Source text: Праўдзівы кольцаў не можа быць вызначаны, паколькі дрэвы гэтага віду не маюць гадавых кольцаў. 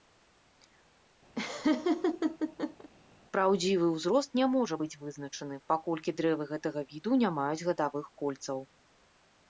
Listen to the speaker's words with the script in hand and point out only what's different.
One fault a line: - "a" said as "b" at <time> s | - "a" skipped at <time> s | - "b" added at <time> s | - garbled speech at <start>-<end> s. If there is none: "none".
- "кольцаў" said as "ўзрост" at 3.9 s